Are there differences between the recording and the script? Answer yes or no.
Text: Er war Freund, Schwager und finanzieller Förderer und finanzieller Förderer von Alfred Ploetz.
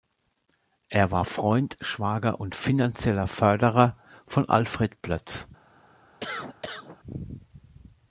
yes